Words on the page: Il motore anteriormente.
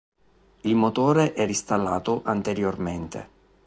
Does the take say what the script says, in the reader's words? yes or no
no